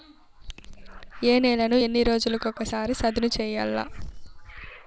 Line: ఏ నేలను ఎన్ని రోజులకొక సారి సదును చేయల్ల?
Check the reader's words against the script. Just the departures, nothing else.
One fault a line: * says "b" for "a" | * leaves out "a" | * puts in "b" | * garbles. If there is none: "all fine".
all fine